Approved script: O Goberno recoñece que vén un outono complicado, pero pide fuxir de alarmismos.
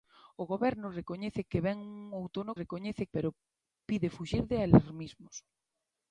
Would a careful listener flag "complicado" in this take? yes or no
yes